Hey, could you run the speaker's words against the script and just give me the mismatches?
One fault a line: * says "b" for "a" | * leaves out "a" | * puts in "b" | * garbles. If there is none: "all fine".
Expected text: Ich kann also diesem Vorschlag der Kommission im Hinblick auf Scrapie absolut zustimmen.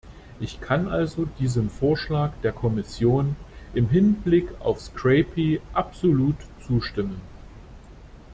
all fine